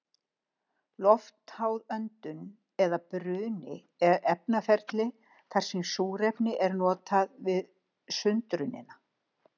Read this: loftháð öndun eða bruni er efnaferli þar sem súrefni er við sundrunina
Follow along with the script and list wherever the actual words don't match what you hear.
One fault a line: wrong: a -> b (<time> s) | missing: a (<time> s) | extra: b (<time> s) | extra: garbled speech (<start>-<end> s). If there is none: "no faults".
extra: notað (6.8 s)